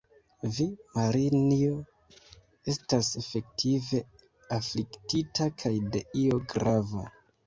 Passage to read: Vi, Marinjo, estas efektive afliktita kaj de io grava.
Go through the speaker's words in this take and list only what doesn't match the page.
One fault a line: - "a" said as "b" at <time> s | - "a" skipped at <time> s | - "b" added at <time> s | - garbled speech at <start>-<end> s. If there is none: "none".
none